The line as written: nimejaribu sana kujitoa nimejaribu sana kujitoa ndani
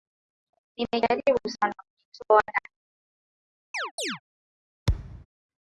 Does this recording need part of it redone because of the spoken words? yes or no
yes